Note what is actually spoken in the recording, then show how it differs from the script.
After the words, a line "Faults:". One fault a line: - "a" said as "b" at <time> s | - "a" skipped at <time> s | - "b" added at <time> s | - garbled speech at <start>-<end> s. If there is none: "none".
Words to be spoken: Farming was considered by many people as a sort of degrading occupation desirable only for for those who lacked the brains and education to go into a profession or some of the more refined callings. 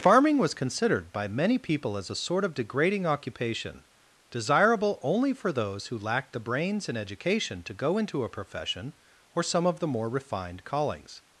Farming was considered by many people as a sort of degrading occupation desirable only for those who lacked the brains and education to go into a profession or some of the more refined callings.
Faults:
- "for" skipped at 5.5 s